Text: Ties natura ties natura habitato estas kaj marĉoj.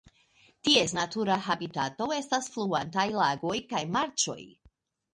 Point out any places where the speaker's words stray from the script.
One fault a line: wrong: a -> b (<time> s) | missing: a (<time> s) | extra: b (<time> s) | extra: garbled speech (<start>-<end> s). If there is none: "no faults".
wrong: ties natura habitato estas -> habitato estas fluantaj lagoj (1.5 s)